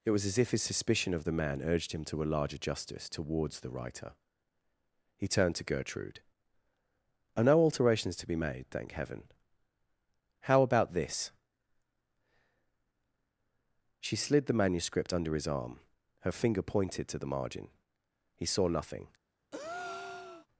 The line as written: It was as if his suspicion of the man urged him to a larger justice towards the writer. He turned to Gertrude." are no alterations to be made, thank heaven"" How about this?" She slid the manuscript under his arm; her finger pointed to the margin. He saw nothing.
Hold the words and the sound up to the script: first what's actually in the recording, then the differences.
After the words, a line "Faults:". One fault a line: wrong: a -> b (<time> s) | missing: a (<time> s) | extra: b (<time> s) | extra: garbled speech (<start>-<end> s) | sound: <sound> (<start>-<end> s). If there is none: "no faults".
It was as if his suspicion of the man urged him to a larger justice towards the writer. He turned to Gertrude." are no alterations to be made, thank heaven"" How about this?" She slid the manuscript under his arm; her finger pointed to the margin. He saw nothing.
Faults:
sound: breath (19.5-20.5 s)